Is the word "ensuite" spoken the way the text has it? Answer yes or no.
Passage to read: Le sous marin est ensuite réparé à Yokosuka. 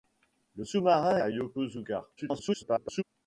no